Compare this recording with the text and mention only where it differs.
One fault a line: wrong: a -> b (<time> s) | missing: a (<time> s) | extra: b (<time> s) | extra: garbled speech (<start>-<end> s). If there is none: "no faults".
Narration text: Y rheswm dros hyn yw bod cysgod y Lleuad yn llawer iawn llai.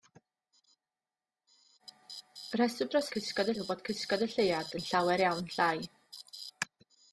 wrong: hyn -> cysgod (3.1 s)